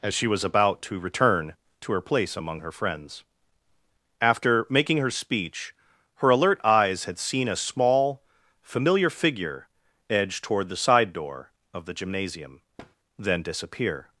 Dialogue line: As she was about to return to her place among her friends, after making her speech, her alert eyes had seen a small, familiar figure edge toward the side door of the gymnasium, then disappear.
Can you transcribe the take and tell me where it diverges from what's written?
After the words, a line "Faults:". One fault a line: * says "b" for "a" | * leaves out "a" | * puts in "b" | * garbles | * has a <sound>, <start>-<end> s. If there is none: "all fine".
As she was about to return to her place among her friends, after making her speech, her alert eyes had seen a small, familiar figure edge toward the side door of the gymnasium, then disappear.
Faults:
* has a thud, 12.8-13.0 s